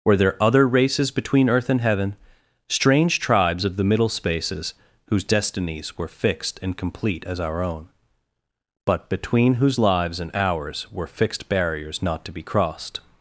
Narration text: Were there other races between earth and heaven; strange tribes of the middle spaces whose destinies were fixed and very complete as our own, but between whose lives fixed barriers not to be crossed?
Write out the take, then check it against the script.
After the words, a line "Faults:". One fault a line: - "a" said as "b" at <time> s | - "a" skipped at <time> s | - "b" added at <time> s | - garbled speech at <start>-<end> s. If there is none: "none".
Were there other races between earth and heaven; strange tribes of the middle spaces whose destinies were fixed and complete as our own, but between whose lives and ours were fixed barriers not to be crossed?
Faults:
- "very" skipped at 6.8 s
- "and ours were" added at 10.2 s